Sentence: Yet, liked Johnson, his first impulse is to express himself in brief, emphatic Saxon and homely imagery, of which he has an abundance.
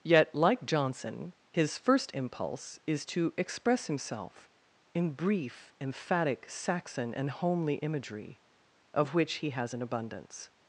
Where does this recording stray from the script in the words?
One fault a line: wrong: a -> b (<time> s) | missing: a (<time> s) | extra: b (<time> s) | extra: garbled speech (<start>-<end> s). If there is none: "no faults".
wrong: liked -> like (0.3 s)